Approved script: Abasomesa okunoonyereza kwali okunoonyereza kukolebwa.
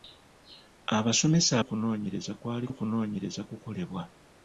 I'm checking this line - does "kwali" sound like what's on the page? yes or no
yes